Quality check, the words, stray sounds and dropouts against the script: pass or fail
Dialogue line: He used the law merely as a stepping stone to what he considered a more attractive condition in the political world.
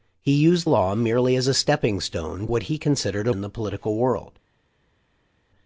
fail